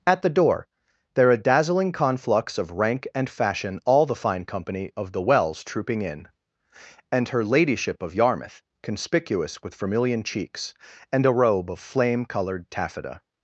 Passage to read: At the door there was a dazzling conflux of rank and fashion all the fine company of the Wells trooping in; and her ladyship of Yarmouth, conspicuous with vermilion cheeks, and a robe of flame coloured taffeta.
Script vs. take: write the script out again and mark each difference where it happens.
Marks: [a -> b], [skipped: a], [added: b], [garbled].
At the door there [skipped: was] a dazzling conflux of rank and fashion all the fine company of the Wells trooping in; and her ladyship of Yarmouth, conspicuous with vermilion cheeks, and a robe of flame coloured taffeta.